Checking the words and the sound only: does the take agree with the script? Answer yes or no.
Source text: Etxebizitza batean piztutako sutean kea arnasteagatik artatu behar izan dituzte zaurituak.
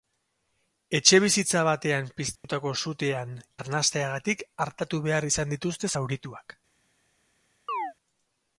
no